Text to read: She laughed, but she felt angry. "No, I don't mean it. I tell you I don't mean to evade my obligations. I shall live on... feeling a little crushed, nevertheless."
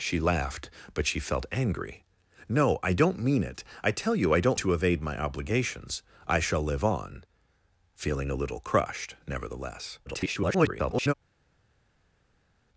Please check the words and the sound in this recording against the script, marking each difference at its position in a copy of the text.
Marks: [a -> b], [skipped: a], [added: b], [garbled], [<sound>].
She laughed, but she felt angry. "No, I don't mean it. I tell you I don't [skipped: mean] to evade my obligations. I shall live on... feeling a little crushed, nevertheless." [garbled]